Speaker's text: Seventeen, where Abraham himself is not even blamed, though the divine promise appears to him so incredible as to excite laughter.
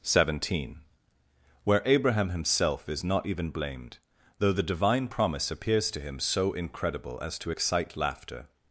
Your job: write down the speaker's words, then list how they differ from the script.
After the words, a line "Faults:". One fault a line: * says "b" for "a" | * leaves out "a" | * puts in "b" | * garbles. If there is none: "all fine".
Seventeen, where Abraham himself is not even blamed, though the divine promise appears to him so incredible as to excite laughter.
Faults:
all fine